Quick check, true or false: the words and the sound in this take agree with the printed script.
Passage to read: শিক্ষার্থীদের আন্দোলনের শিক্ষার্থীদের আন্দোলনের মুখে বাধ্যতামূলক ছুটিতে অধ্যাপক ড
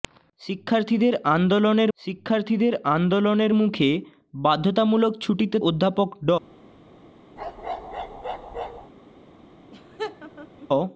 false